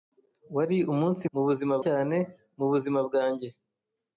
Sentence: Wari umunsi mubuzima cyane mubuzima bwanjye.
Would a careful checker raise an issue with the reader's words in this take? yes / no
no